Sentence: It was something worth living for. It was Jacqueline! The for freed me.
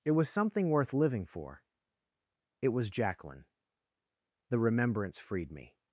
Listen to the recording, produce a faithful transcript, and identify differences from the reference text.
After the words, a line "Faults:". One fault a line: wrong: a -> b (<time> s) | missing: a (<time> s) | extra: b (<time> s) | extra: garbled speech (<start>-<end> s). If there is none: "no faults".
It was something worth living for. It was Jacqueline! The remembrance freed me.
Faults:
wrong: for -> remembrance (4.6 s)